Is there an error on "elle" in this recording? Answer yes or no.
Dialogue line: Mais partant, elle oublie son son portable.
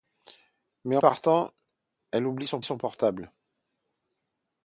no